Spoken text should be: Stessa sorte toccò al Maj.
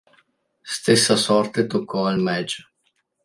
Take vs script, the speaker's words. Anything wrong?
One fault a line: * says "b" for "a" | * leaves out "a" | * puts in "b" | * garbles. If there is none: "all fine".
all fine